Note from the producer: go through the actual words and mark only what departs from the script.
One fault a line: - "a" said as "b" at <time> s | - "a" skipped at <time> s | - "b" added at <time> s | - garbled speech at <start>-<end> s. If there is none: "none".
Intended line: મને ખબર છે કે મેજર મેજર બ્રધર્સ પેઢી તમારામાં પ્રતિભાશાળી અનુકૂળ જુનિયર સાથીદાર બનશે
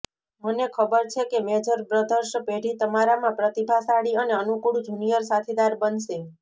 - "મેજર" skipped at 1.8 s
- "અને" added at 4.2 s